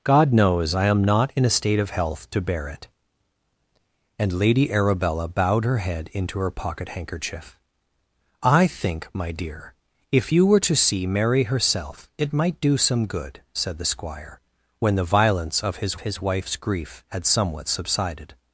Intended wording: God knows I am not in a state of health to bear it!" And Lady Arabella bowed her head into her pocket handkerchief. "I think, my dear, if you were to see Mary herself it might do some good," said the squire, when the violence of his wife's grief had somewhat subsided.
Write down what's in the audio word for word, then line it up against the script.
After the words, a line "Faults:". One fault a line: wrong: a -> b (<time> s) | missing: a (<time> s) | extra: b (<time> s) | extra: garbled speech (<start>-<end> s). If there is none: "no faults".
God knows I am not in a state of health to bear it!" And Lady Arabella bowed her head into her pocket handkerchief. "I think, my dear, if you were to see Mary herself it might do some good," said the squire, when the violence of his his wife's grief had somewhat subsided.
Faults:
extra: his (16.0 s)